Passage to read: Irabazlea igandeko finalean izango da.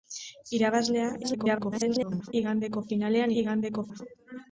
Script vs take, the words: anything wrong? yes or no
yes